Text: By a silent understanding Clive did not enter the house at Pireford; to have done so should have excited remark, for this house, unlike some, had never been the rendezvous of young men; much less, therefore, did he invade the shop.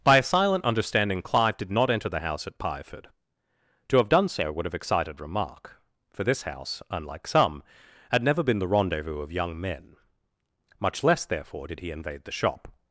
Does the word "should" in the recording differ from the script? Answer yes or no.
yes